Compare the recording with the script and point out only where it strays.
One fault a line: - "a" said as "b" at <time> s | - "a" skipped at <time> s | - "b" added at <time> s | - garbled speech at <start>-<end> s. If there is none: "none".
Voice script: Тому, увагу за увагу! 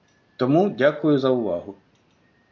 - "увагу" said as "дякую" at 0.7 s